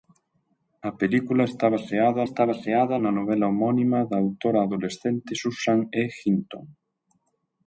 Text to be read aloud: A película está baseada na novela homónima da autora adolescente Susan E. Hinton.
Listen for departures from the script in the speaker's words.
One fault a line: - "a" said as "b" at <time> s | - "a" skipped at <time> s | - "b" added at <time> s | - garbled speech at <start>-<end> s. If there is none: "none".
- "está baseada" added at 2.2 s